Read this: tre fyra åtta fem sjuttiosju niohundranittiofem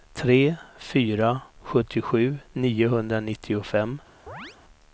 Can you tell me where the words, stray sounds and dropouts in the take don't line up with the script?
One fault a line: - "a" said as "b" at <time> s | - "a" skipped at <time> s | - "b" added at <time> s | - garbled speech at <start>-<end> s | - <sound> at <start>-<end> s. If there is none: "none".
- "åtta fem" skipped at 1.4 s
- chirp at 4.3-4.6 s